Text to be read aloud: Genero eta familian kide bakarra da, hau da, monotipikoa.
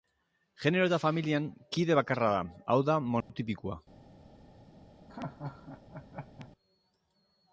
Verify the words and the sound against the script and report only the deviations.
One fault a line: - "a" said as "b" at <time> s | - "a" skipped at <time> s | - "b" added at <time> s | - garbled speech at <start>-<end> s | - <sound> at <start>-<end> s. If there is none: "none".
- dropout at 3.2-3.3 s
- laugh at 5.1-6.5 s